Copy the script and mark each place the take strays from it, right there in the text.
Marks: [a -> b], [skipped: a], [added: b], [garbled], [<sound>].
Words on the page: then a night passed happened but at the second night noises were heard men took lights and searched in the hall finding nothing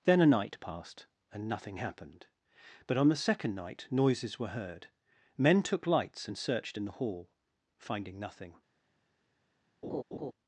then a night passed [added: and nothing] happened but [at -> on] the second night noises were heard men took lights and searched in the hall finding nothing [laugh]